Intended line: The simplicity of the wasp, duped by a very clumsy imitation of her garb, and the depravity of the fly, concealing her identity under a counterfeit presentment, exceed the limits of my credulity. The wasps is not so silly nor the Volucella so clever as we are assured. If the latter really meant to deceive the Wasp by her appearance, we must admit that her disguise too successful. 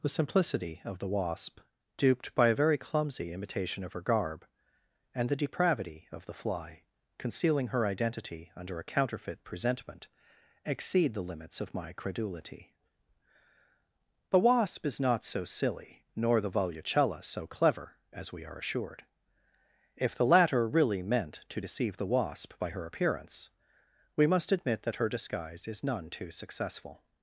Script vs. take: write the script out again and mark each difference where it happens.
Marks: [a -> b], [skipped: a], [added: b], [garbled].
The simplicity of the wasp, duped by a very clumsy imitation of her garb, and the depravity of the fly, concealing her identity under a counterfeit presentment, exceed the limits of my credulity. The [wasps -> wasp] is not so silly nor the Volucella so clever as we are assured. If the latter really meant to deceive the Wasp by her appearance, we must admit that her disguise [added: is none] too successful.